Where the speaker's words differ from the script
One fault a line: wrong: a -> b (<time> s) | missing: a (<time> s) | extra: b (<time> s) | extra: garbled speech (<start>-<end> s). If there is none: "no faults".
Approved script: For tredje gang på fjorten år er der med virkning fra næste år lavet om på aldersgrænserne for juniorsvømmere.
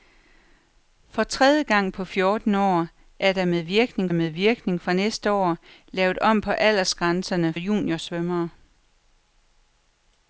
extra: med virkning (4.1 s)
missing: for (7.5 s)